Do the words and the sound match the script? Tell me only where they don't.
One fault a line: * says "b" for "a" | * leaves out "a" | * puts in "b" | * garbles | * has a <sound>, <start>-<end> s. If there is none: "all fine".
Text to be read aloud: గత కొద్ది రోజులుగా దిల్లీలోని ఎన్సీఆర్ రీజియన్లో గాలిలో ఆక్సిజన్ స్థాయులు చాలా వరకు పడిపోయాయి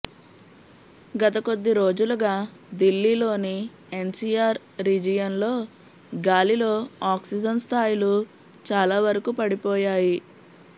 all fine